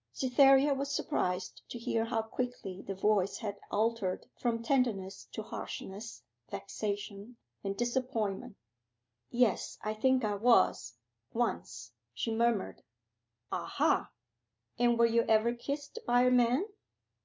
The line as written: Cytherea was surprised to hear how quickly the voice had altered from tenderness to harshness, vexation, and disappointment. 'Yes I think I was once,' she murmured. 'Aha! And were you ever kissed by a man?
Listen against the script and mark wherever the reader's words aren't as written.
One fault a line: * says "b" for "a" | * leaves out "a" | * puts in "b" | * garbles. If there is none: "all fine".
all fine